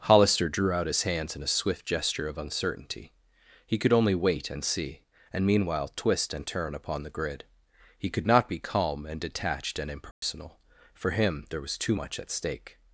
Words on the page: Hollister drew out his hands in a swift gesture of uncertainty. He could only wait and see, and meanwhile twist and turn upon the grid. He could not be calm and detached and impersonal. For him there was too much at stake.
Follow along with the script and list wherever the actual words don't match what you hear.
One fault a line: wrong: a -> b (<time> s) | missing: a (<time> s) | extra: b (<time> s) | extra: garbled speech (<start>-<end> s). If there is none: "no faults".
no faults